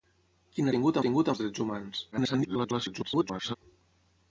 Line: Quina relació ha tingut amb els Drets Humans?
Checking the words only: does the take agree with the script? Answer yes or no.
no